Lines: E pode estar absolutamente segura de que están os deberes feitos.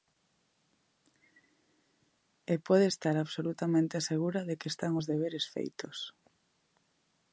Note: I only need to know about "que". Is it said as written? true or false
true